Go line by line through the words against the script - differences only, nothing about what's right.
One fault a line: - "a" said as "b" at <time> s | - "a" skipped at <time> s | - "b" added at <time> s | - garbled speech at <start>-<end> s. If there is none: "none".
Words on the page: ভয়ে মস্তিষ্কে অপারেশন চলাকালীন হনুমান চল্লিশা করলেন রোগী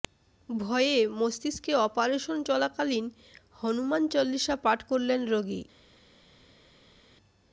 - "পাঠ" added at 4.6 s